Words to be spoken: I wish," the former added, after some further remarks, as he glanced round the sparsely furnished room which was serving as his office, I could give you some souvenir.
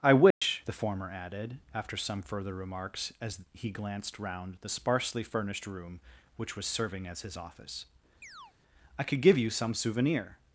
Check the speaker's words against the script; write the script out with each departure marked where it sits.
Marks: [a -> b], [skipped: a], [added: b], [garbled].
I wish," the former added, after some further remarks, as he glanced round the sparsely furnished room which was serving as his office, I could give you some souvenir.